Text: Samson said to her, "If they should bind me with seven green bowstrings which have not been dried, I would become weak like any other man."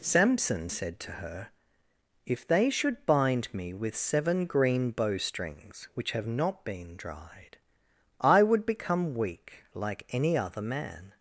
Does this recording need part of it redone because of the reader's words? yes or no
no